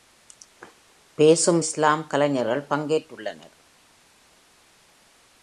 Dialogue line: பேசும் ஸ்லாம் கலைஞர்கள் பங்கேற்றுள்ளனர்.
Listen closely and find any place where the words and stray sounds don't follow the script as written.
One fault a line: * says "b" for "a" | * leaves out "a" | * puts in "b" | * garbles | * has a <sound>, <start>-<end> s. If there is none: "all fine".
all fine